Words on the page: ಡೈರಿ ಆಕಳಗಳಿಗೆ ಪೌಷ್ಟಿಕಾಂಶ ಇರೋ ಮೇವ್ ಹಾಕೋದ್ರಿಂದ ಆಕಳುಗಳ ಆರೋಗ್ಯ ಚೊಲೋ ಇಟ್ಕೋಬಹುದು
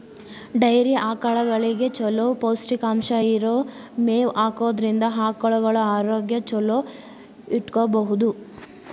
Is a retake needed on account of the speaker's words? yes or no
yes